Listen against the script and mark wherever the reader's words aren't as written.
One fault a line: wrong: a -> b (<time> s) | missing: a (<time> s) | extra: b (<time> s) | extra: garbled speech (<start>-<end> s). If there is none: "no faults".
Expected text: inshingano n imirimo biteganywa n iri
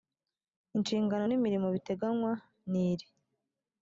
no faults